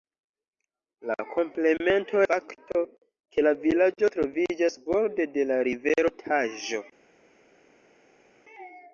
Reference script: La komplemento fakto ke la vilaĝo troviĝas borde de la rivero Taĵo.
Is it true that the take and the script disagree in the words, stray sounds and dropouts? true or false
false